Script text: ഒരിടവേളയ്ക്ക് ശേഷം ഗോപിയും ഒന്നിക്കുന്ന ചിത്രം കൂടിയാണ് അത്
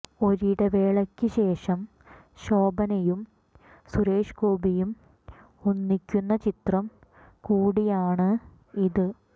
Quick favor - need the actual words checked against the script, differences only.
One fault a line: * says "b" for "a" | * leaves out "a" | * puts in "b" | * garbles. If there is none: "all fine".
* puts in "ശോഭനയും സുരേഷ്"
* says "ഇത്" for "അത്"